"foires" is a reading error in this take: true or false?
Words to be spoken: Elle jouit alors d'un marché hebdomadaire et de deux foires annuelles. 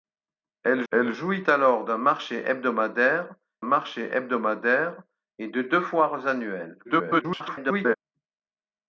false